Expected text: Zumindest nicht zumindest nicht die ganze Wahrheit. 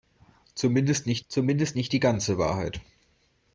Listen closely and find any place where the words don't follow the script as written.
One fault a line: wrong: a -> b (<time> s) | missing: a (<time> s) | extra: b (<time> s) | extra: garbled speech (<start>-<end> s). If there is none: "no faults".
no faults